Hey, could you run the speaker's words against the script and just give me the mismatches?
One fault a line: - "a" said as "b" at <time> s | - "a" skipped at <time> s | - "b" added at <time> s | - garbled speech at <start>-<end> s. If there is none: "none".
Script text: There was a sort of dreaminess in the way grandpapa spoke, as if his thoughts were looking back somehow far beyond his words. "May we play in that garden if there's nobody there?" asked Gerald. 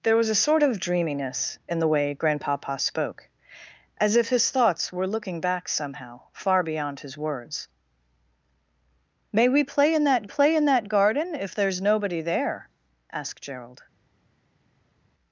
- "play in that" added at 10.2 s